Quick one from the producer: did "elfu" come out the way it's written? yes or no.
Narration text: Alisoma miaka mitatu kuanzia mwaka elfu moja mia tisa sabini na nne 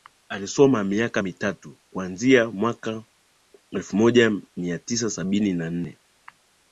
yes